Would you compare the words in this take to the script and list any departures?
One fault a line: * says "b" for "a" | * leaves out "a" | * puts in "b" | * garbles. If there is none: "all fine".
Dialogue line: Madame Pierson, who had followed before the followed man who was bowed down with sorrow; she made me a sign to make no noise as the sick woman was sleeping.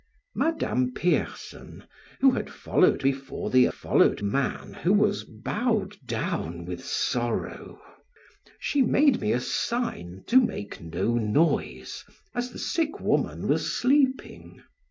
all fine